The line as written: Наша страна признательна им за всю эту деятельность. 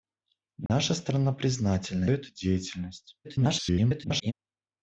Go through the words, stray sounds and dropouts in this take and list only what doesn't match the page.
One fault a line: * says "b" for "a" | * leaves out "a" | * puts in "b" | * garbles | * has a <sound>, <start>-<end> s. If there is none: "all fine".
* has a dropout, 0.7-0.7 s
* leaves out "им за всю"
* garbles